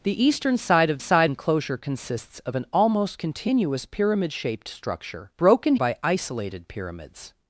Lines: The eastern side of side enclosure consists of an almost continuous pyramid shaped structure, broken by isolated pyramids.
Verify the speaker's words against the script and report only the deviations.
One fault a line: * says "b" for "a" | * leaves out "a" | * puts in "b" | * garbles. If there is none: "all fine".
all fine